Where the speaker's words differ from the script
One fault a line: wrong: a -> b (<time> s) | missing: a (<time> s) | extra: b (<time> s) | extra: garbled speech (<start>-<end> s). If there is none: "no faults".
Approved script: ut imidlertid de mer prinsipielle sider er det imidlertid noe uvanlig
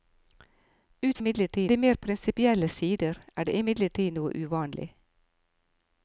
no faults